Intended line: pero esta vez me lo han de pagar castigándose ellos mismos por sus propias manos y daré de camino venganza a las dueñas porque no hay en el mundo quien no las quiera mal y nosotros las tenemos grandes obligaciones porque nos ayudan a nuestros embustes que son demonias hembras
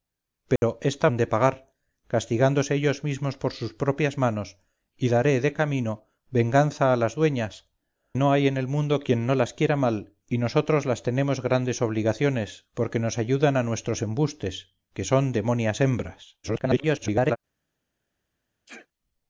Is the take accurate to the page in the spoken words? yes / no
no